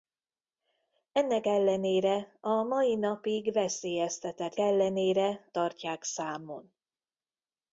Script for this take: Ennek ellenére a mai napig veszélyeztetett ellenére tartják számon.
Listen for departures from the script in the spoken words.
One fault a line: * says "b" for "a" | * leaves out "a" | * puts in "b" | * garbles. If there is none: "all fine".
all fine